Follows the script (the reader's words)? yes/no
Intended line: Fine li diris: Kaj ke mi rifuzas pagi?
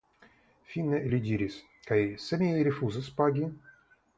no